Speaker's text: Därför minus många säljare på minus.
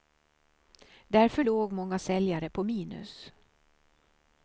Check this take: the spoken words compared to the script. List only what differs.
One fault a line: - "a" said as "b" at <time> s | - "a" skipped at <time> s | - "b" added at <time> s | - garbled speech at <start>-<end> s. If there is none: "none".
- "minus" said as "låg" at 1.4 s